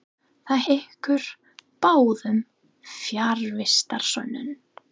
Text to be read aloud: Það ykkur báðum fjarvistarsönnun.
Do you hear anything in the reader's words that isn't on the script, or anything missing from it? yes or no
no